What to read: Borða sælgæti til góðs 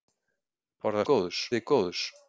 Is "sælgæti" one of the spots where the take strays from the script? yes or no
yes